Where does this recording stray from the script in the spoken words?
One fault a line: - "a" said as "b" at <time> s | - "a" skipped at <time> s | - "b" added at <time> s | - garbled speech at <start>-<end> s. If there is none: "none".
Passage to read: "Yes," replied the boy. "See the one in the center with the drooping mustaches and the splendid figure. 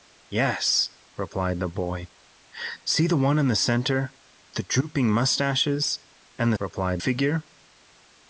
- "with" skipped at 4.1 s
- "splendid" said as "replied" at 6.6 s